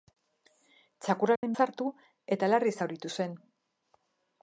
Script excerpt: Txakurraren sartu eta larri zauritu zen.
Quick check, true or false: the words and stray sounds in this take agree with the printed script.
false